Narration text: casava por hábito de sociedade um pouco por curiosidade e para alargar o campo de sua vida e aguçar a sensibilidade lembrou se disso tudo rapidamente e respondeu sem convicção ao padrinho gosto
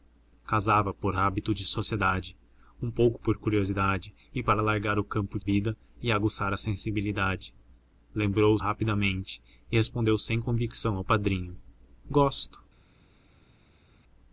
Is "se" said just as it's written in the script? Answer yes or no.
no